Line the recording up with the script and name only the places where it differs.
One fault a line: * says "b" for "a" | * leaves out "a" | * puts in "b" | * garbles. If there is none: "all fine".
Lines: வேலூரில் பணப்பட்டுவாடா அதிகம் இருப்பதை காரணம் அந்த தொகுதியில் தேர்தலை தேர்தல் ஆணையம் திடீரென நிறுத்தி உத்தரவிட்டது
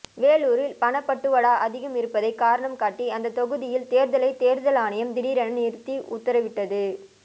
* puts in "காட்டி"